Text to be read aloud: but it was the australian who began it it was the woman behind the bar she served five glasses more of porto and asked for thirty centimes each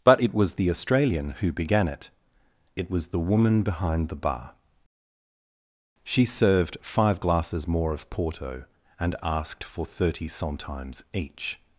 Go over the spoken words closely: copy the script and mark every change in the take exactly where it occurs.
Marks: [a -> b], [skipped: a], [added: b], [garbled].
but it was the australian who began it it was the woman behind the bar she served five glasses more of porto and asked for thirty centimes each